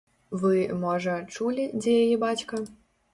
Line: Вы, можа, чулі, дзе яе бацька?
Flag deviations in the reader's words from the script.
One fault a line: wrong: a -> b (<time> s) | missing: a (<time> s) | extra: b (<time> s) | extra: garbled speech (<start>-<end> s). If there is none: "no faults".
no faults